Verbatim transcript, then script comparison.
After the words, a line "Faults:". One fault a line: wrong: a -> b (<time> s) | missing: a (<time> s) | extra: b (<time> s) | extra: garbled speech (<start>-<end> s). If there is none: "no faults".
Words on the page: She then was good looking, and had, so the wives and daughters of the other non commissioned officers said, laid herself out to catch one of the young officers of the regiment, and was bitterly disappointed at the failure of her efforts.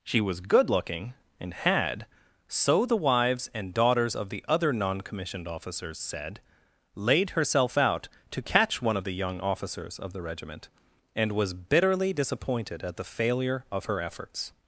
She was good looking, and had, so the wives and daughters of the other non commissioned officers said, laid herself out to catch one of the young officers of the regiment, and was bitterly disappointed at the failure of her efforts.
Faults:
missing: then (0.2 s)